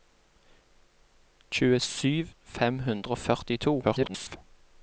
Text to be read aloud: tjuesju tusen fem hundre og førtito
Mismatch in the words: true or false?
true